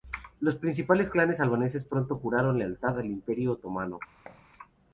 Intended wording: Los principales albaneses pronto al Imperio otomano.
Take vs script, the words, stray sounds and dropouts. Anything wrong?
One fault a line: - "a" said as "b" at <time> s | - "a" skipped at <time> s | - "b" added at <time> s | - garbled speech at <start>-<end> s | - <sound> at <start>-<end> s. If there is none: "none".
- "clanes" added at 1.1 s
- "juraron lealtad" added at 2.2 s
- thud at 4.3-4.5 s